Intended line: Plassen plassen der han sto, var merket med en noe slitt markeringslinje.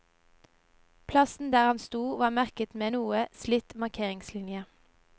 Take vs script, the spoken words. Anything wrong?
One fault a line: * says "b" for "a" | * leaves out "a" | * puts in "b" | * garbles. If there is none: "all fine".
* leaves out "plassen"